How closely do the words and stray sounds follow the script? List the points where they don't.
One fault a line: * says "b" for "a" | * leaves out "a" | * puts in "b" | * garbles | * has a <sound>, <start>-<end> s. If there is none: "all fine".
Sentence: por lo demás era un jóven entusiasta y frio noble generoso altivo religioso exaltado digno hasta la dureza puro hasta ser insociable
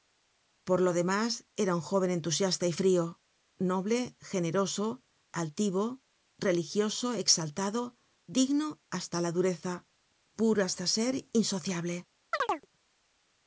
* has a chirp, 12.3-12.7 s